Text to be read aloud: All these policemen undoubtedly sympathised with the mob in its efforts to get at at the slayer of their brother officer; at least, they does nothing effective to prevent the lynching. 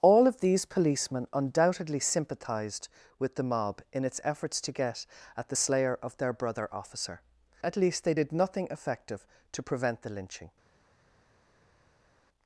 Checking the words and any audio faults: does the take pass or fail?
fail